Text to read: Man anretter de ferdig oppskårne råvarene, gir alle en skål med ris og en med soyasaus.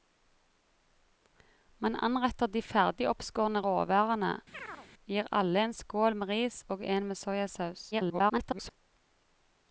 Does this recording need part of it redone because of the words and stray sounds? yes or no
yes